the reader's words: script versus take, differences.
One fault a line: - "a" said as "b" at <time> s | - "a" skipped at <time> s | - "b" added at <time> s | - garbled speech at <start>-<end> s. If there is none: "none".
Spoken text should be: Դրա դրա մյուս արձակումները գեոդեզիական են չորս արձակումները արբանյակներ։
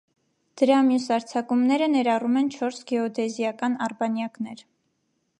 - "դրա" skipped at 0.8 s
- "գեոդեզիական" said as "ներառում" at 1.9 s
- "արձակումները" said as "գեոդեզիական" at 2.9 s